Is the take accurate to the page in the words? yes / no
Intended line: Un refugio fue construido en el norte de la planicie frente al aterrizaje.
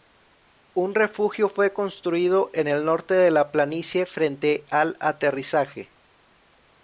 yes